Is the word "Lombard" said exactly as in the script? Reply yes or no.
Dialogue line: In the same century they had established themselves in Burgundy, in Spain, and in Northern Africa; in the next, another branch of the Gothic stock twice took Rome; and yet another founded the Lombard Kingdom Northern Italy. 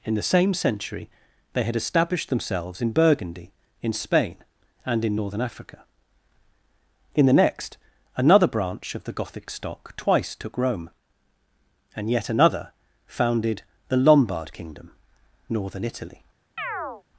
yes